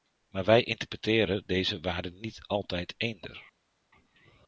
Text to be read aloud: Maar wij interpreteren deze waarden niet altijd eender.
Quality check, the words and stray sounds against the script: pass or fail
pass